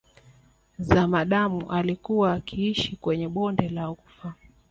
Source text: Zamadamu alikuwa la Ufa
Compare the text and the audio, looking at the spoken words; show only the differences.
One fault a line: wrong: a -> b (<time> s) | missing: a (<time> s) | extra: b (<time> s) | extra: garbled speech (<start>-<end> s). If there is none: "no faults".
extra: akiishi kwenye bonde (2.3 s)